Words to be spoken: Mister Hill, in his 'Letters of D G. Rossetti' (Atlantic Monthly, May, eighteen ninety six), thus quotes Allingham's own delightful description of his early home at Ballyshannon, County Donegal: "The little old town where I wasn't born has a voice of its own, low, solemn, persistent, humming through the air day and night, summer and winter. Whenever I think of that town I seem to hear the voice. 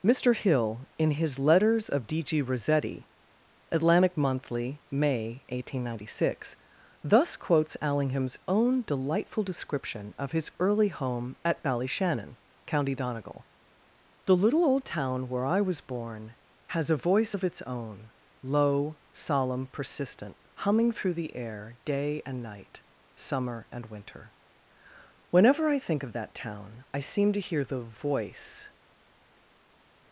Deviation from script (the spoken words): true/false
true